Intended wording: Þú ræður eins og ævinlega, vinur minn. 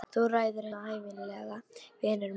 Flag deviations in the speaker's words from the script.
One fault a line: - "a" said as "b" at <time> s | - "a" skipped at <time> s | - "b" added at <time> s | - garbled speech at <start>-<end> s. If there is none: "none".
- "eins" skipped at 0.7 s